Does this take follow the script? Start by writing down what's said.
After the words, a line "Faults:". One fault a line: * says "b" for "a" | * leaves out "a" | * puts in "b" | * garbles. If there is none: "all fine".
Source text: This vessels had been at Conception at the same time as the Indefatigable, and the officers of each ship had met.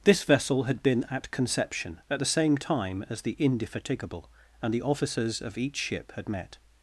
This vessel had been at Conception at the same time as the Indefatigable, and the officers of each ship had met.
Faults:
* says "vessel" for "vessels"